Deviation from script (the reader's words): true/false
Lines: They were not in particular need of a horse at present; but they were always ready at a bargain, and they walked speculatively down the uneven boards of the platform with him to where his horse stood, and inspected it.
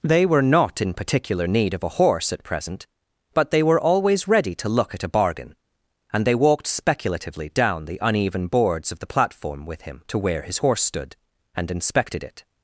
true